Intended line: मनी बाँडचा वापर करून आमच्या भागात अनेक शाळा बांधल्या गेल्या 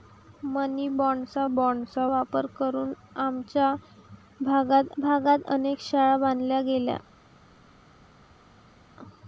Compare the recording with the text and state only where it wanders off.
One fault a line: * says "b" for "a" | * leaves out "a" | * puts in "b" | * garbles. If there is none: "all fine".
* puts in "बाँडचा"
* puts in "भागात"